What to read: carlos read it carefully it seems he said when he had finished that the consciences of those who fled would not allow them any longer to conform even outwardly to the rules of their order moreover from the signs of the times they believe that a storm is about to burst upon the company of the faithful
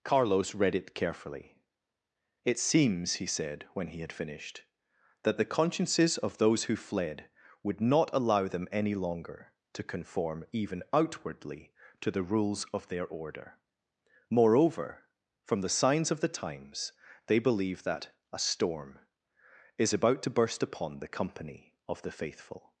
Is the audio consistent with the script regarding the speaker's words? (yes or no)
yes